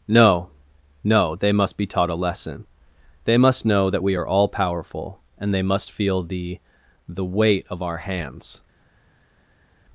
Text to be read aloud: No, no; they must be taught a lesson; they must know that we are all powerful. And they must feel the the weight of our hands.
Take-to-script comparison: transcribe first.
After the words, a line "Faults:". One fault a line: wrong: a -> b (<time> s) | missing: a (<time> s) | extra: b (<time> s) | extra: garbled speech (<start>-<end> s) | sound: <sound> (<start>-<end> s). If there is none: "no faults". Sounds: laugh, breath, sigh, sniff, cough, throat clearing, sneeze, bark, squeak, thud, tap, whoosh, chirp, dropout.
No, no; they must be taught a lesson; they must know that we are all powerful. And they must feel the the weight of our hands.
Faults:
no faults